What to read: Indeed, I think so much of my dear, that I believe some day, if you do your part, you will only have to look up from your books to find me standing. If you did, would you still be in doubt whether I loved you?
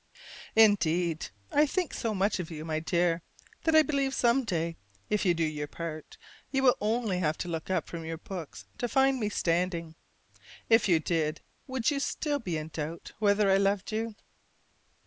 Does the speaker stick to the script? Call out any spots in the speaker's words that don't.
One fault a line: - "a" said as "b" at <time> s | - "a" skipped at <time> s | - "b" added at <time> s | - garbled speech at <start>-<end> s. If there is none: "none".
- "you" added at 2.5 s